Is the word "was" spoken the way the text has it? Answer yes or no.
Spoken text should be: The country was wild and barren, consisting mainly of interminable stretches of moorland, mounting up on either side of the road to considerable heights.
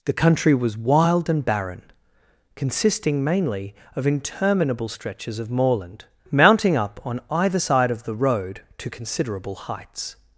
yes